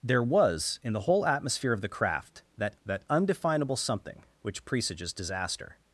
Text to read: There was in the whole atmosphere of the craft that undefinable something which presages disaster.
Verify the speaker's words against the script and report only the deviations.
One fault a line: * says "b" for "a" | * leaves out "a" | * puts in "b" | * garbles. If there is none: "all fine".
* puts in "that"